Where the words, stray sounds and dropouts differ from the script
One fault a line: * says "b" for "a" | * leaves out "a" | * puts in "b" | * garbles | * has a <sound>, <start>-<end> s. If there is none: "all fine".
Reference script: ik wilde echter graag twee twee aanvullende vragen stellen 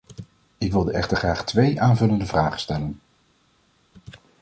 * leaves out "twee"